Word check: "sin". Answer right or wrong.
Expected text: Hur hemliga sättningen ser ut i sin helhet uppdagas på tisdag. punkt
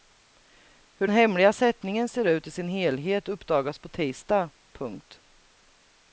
right